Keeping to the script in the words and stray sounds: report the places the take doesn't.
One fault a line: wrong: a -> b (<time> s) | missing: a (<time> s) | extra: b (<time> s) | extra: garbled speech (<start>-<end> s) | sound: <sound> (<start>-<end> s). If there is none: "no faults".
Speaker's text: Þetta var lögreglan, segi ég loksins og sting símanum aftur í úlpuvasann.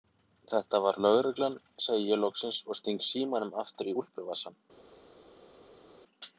no faults